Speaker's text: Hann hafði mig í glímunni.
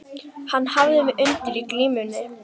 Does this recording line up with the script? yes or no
no